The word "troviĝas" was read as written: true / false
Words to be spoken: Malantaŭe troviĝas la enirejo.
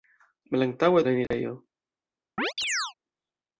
false